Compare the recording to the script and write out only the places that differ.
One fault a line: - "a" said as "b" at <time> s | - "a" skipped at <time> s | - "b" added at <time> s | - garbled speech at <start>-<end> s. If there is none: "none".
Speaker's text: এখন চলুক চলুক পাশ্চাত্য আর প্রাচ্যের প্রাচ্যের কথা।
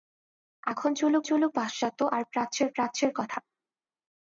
none